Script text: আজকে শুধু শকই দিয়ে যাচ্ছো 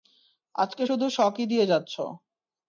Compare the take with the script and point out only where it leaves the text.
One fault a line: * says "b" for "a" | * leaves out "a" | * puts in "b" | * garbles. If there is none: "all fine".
all fine